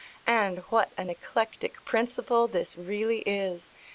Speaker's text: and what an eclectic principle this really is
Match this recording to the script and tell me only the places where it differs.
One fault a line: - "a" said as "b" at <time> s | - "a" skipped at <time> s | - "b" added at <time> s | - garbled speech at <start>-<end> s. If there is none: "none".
none